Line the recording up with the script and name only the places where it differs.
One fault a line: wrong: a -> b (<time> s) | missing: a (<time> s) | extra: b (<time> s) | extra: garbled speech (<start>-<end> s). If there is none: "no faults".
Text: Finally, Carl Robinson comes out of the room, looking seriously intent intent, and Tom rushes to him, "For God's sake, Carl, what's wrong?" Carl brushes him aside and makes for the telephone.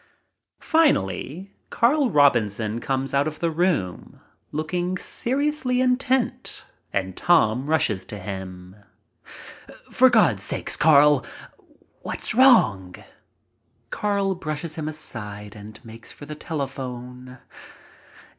missing: intent (6.7 s)